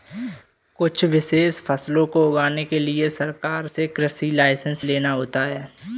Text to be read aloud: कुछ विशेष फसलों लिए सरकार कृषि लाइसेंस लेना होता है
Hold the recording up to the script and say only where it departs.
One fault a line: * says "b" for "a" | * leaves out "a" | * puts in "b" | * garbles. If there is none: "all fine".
* puts in "को उगाने के"
* puts in "से"